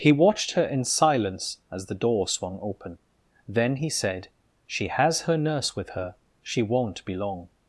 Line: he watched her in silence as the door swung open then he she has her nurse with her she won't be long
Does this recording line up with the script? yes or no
no